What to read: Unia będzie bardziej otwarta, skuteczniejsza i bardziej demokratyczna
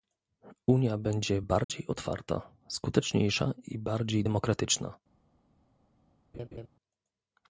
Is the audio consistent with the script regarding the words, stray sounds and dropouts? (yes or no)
no